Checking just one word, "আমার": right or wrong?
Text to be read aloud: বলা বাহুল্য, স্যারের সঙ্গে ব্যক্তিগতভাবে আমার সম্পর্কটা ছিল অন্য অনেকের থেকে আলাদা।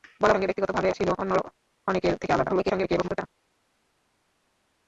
wrong